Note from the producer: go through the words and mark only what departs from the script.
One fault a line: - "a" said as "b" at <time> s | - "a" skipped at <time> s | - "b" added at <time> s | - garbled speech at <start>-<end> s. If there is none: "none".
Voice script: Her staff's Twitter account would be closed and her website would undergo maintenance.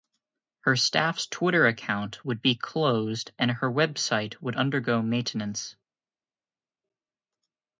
none